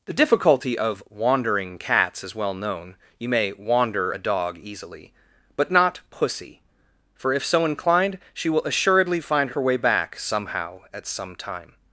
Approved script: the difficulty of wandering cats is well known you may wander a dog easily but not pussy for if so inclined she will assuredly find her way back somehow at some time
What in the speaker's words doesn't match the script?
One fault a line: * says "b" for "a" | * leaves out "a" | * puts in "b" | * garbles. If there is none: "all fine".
all fine